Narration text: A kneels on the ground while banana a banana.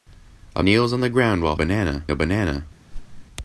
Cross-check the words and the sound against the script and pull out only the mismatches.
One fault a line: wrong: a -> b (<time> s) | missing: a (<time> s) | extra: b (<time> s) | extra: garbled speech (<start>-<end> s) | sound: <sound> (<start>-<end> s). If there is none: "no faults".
sound: whoosh (2.9-3.3 s)